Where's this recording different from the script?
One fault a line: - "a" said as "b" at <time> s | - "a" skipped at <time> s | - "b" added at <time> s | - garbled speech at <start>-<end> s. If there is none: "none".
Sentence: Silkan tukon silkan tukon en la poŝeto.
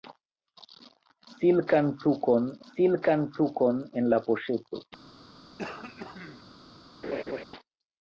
none